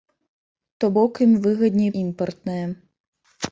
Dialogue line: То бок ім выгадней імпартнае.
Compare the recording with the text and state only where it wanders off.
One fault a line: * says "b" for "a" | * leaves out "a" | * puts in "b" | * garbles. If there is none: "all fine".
all fine